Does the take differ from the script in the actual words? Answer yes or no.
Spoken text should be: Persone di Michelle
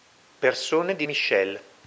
no